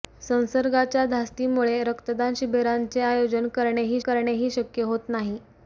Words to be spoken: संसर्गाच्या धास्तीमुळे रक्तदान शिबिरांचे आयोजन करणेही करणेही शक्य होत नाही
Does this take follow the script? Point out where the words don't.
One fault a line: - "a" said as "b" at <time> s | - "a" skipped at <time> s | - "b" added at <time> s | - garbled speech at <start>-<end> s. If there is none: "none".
none